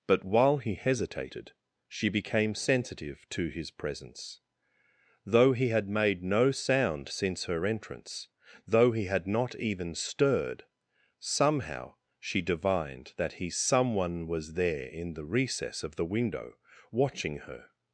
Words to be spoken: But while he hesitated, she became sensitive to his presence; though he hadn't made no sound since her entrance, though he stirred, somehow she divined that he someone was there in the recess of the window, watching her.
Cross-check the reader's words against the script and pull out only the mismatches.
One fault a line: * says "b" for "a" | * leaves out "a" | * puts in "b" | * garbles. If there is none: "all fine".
* says "had" for "hadn't"
* puts in "had not even"